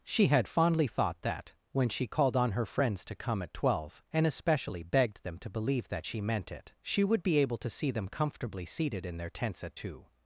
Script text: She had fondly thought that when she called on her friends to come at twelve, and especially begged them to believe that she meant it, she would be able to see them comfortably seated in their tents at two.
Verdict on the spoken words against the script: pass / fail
pass